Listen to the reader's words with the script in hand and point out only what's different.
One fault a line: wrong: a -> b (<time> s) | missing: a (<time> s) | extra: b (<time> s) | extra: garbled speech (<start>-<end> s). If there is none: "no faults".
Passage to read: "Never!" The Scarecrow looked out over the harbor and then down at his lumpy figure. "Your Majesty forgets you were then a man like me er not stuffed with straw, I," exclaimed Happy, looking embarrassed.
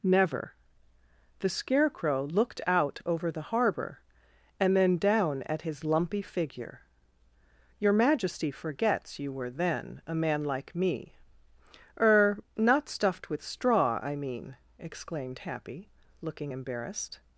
extra: mean (14.2 s)